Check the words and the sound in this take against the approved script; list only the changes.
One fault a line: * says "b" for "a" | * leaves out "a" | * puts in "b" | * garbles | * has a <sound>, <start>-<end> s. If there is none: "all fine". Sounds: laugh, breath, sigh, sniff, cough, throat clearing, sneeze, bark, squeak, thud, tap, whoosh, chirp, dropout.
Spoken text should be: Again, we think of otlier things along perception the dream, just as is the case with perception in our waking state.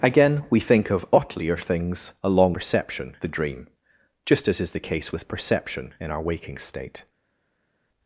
all fine